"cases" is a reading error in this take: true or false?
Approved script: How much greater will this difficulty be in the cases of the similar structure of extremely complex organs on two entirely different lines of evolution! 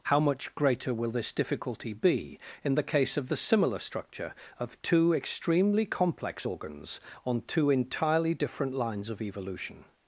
true